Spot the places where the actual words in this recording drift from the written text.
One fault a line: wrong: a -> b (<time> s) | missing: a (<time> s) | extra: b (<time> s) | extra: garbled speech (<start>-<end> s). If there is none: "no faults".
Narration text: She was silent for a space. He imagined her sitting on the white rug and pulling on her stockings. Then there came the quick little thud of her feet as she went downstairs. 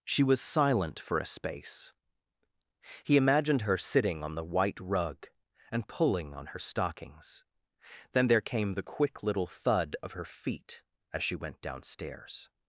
no faults